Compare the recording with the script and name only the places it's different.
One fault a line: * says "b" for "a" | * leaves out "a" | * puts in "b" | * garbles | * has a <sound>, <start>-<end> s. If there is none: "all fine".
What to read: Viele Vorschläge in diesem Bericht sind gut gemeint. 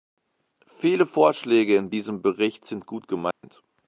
* has a dropout, 3.3-3.4 s